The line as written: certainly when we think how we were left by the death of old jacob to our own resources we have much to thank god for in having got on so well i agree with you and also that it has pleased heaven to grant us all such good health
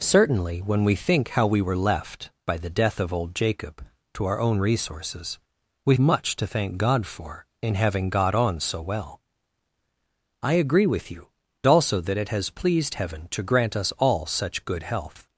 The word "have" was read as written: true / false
false